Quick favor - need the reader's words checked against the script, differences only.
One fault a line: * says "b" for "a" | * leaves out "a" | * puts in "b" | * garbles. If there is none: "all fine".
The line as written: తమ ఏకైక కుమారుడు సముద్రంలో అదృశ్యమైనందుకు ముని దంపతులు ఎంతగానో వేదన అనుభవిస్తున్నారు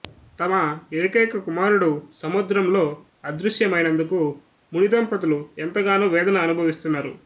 all fine